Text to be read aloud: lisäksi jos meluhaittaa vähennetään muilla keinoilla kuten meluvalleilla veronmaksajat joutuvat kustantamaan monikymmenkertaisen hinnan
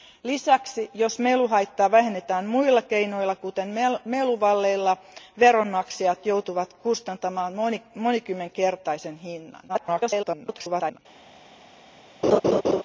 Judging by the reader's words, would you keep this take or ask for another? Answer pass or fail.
fail